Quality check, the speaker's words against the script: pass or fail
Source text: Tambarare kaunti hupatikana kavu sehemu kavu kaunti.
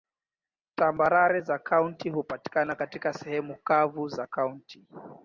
fail